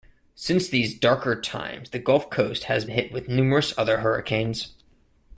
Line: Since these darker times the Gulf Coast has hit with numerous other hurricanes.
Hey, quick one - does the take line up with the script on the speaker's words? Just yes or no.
yes